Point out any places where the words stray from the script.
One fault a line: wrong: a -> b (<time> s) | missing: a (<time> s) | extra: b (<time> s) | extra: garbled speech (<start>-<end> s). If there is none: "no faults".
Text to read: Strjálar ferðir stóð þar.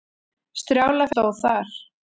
missing: ferðir (1.1 s)